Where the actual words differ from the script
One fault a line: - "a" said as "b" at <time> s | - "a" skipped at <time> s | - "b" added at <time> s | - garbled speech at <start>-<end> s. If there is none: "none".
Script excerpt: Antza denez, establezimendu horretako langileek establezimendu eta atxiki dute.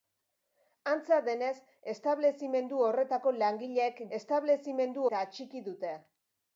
none